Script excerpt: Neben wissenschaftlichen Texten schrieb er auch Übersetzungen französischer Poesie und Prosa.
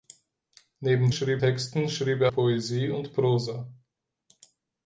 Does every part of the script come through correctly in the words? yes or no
no